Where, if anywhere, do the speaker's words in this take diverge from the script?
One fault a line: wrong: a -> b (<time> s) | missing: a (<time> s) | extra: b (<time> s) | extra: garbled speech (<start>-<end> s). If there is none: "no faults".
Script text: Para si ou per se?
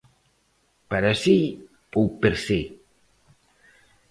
no faults